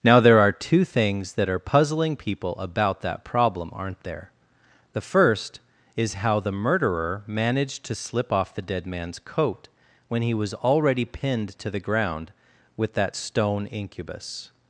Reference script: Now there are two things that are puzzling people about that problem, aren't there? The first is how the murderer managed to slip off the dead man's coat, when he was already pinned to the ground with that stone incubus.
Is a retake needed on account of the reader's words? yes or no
no